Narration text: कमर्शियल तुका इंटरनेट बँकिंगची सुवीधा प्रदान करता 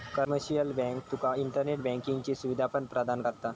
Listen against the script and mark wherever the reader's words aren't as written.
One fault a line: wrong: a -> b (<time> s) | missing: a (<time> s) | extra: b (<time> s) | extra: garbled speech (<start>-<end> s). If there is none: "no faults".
extra: बँक (0.7 s)
extra: पण (2.7 s)